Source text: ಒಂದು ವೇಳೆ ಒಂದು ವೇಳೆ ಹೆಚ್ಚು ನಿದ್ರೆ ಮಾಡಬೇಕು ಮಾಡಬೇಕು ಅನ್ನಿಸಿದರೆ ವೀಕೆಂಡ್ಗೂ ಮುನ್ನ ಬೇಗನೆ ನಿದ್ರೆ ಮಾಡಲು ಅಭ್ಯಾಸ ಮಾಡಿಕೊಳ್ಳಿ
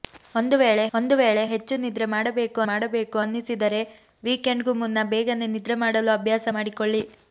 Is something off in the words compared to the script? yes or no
no